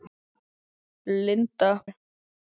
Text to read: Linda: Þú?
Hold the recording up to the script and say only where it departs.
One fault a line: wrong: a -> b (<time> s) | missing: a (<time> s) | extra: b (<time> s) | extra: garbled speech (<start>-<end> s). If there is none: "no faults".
no faults